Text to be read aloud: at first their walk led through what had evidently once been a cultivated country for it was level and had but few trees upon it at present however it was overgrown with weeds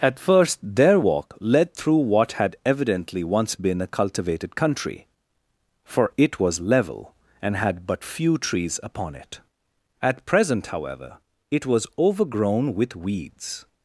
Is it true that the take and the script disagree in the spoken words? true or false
false